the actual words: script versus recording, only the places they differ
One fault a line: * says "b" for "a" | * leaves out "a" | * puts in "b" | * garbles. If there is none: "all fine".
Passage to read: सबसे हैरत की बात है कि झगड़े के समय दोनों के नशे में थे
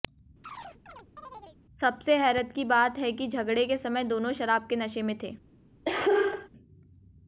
* puts in "शराब"